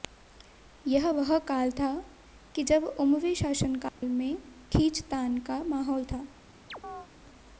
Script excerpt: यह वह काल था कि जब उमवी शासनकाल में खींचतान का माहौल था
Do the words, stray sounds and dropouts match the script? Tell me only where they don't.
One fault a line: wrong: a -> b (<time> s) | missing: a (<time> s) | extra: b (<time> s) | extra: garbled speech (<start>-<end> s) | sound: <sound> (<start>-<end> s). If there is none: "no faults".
sound: dropout (3.9-4.0 s)
sound: chirp (6.7-7.1 s)